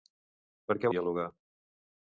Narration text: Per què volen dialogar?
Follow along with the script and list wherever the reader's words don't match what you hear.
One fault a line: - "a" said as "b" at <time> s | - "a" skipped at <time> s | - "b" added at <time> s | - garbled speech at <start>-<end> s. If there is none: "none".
- "volen" skipped at 0.9 s